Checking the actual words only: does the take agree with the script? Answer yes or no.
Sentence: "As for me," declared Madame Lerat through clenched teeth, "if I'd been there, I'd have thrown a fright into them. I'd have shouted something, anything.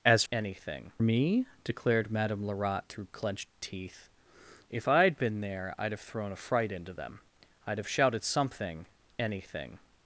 no